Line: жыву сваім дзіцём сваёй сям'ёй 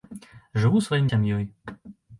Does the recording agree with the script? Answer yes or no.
no